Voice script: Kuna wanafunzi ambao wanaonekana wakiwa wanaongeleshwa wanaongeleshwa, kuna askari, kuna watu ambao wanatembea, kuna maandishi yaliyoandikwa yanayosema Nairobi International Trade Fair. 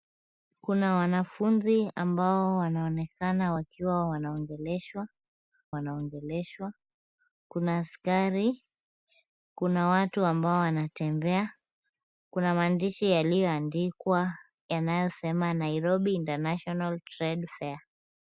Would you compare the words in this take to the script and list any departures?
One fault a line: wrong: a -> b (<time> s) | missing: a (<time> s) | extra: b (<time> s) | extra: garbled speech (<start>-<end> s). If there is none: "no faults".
no faults